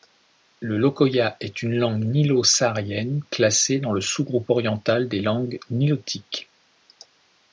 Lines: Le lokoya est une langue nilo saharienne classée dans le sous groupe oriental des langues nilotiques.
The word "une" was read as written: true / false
true